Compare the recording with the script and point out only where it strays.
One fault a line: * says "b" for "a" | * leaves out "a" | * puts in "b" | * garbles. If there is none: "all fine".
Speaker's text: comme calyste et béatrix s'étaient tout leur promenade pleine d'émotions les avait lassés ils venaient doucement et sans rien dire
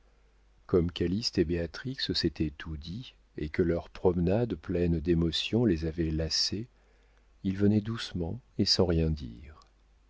* puts in "dit et que"